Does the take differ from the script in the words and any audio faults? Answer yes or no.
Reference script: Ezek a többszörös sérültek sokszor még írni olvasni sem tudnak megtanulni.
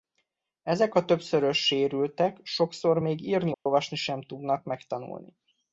yes